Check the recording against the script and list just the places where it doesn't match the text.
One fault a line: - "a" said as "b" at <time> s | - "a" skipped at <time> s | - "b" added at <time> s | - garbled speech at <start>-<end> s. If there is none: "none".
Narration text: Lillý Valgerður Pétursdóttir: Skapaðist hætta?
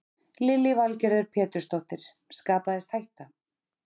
none